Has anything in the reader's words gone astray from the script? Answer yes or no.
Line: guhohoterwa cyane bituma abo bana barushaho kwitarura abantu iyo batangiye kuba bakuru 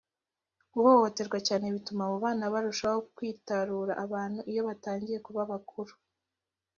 no